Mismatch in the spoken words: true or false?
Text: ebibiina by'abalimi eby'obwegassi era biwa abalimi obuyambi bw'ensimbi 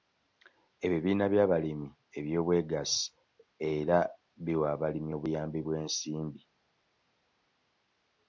false